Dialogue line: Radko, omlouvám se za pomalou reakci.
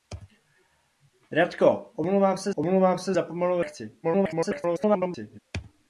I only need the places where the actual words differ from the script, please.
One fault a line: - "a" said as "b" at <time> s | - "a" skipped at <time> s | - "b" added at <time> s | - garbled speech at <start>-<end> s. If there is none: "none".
- "omlouvám se" added at 2.5 s
- garbled speech at 4.0-5.4 s